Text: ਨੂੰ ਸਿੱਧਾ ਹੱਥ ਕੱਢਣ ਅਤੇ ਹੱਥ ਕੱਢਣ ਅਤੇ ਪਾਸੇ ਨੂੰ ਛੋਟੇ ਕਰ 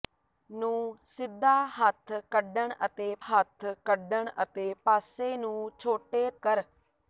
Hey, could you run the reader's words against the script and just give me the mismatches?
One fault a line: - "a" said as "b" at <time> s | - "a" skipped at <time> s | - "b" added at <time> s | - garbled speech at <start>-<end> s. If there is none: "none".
none